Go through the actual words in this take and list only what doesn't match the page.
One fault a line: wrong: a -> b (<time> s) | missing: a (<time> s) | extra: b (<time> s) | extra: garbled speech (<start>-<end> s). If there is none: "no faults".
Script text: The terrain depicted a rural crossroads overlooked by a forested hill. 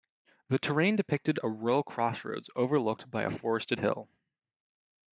no faults